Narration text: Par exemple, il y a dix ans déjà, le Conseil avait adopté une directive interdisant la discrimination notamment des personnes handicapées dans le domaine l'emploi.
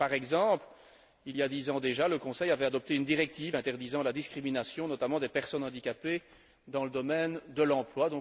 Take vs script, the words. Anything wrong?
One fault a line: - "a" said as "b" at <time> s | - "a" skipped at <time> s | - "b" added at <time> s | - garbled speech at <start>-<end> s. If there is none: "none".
- "de" added at 7.5 s